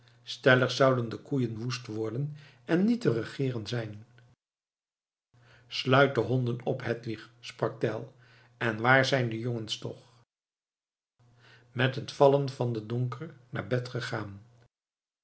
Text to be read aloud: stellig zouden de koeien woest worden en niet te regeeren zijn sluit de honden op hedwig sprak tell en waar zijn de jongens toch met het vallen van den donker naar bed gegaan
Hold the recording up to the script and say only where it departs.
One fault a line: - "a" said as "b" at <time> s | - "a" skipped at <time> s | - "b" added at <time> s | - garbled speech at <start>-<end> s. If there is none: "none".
none